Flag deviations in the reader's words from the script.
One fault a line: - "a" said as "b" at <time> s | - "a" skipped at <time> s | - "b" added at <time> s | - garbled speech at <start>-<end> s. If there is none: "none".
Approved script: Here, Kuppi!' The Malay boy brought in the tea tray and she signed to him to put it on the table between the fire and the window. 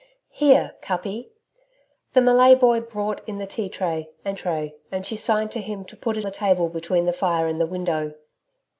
- "tray and" added at 4.3 s
- "on" skipped at 6.3 s